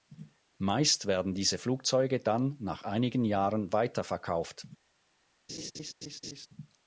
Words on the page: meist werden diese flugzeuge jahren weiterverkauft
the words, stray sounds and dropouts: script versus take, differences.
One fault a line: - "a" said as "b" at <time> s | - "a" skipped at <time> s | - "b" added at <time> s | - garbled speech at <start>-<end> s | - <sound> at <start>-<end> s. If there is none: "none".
- "dann nach einigen" added at 2.2 s
- laugh at 5.5-6.5 s